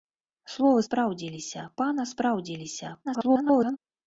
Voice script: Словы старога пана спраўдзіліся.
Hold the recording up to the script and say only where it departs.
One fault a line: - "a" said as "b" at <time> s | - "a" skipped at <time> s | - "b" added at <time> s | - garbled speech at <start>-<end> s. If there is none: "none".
- "старога" said as "спраўдзіліся" at 0.9 s
- garbled speech at 3.0-3.8 s